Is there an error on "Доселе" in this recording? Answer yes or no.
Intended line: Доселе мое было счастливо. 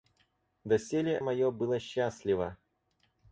no